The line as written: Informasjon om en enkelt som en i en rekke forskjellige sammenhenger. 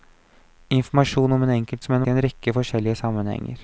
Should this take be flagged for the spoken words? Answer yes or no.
no